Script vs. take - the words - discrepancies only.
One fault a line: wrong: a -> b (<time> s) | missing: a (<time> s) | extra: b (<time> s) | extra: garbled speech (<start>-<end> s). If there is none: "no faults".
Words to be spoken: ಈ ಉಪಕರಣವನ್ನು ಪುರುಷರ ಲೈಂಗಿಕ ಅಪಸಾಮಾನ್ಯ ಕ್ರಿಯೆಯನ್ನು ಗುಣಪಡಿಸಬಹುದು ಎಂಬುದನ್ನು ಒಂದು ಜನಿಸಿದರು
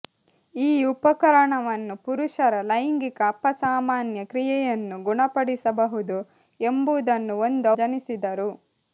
no faults